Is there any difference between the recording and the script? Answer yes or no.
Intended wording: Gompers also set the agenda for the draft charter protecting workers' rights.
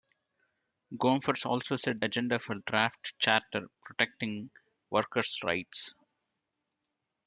yes